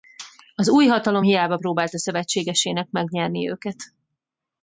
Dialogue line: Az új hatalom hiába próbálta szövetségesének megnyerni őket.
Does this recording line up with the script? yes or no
yes